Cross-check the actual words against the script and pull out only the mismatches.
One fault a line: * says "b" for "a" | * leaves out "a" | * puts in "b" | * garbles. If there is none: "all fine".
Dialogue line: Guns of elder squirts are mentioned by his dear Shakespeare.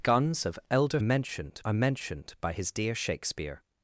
* says "mentioned" for "squirts"